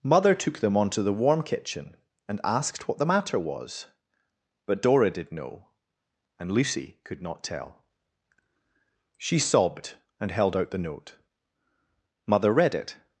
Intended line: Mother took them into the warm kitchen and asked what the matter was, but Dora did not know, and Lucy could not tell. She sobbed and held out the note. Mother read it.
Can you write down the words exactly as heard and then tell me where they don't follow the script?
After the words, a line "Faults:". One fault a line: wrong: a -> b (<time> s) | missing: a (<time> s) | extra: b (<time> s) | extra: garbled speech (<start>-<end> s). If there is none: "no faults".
Mother took them onto the warm kitchen and asked what the matter was, but Dora did know, and Lucy could not tell. She sobbed and held out the note. Mother read it.
Faults:
wrong: into -> onto (0.8 s)
missing: not (5.3 s)